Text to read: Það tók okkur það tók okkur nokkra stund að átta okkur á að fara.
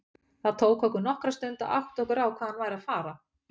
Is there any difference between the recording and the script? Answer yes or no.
yes